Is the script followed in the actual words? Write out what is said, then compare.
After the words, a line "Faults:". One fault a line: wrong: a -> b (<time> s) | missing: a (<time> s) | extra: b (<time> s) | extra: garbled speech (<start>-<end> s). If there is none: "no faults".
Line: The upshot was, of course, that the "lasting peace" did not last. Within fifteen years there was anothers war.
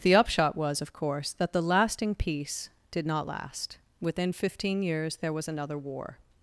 The upshot was, of course, that the "lasting peace" did not last. Within fifteen years there was another war.
Faults:
wrong: anothers -> another (5.5 s)